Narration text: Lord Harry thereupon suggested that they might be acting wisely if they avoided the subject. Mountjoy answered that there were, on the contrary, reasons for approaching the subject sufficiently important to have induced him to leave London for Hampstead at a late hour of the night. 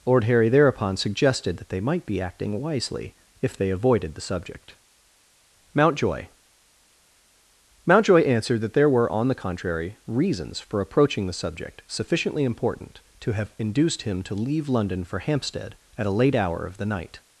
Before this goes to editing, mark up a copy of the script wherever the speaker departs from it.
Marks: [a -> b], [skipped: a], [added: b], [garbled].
Lord Harry thereupon suggested that they might be acting wisely if they avoided the subject. Mountjoy [added: Mountjoy] answered that there were, on the contrary, reasons for approaching the subject sufficiently important to have induced him to leave London for Hampstead at a late hour of the night.